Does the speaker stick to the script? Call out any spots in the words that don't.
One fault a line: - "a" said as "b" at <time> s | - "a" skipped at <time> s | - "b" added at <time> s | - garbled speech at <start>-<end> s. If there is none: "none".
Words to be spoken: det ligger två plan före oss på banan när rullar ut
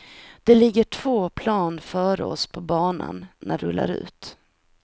none